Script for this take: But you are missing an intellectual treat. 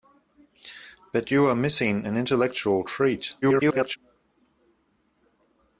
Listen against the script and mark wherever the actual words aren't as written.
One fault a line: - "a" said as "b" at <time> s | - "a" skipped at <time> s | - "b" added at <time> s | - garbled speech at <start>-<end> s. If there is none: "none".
- garbled speech at 3.4-4.0 s